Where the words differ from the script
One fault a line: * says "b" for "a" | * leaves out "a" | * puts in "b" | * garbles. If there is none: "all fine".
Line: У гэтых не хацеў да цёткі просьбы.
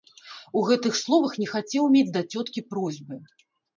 * puts in "словах"
* puts in "мець"